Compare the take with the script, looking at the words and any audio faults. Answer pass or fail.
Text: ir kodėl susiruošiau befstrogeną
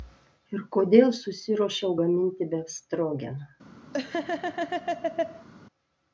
fail